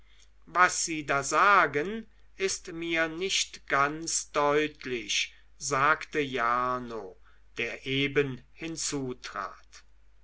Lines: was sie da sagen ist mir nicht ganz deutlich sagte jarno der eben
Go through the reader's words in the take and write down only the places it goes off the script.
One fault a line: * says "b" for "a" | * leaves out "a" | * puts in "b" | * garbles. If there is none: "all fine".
all fine